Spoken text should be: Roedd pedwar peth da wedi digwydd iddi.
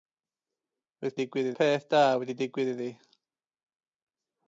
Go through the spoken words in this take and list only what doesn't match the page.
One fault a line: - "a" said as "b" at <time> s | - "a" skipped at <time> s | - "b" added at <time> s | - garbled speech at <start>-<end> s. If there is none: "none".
- "pedwar" said as "digwydd" at 1.2 s